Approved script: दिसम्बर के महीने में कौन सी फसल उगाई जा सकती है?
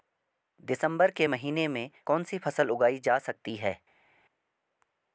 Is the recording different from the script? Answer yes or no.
no